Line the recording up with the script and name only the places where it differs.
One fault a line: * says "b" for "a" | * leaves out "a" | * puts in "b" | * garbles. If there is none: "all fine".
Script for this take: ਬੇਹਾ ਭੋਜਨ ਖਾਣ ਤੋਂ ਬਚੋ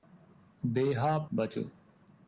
* leaves out "ਭੋਜਨ ਖਾਣ ਤੋਂ"